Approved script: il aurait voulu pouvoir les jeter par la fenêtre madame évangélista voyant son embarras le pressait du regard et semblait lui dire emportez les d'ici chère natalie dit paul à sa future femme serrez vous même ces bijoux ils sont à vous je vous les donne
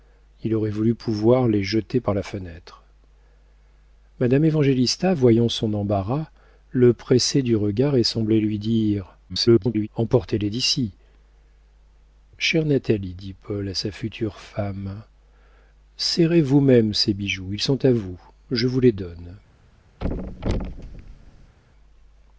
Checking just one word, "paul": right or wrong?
right